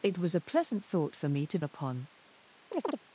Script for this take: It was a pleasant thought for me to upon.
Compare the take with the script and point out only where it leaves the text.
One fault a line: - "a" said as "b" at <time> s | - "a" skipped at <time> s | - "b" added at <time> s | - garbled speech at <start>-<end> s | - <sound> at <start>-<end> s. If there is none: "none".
- chirp at 2.7-3.0 s